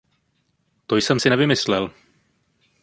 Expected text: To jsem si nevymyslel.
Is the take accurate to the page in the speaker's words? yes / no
yes